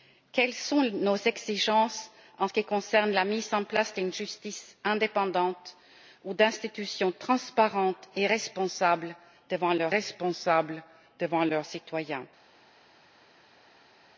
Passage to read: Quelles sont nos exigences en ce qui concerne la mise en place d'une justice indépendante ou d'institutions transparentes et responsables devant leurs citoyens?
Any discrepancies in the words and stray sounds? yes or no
yes